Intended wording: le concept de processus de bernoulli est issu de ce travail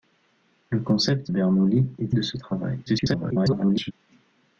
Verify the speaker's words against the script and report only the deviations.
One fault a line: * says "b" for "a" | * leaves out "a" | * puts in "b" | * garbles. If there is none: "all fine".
* leaves out "de processus de"
* leaves out "issu"
* garbles